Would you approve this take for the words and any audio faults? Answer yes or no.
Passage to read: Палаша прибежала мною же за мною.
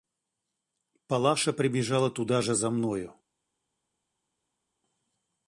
no